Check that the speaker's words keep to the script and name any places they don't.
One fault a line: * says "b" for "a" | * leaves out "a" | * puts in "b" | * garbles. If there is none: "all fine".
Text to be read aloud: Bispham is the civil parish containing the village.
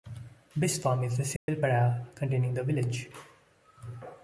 all fine